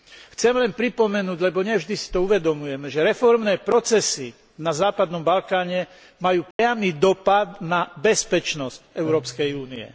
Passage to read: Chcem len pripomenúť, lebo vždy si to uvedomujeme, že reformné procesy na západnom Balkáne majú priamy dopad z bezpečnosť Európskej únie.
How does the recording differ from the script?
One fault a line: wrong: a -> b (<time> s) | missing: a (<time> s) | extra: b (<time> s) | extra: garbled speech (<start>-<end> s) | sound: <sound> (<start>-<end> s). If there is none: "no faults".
extra: nie (1.6 s)
sound: dropout (6.5-6.6 s)
wrong: z -> na (7.6 s)